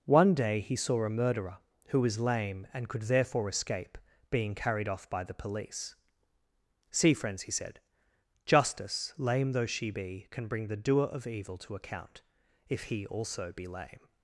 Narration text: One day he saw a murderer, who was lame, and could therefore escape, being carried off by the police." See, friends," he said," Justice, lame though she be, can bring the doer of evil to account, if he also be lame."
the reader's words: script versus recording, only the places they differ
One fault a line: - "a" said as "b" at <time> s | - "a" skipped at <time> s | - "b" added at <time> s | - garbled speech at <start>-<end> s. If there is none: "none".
none